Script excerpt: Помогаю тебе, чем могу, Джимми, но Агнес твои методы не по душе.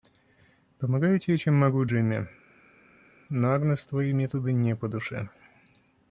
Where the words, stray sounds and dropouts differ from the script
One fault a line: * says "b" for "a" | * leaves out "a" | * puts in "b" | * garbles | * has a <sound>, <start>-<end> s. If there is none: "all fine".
all fine